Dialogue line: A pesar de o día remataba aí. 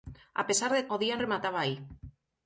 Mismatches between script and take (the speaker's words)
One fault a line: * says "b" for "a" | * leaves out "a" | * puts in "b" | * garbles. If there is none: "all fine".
all fine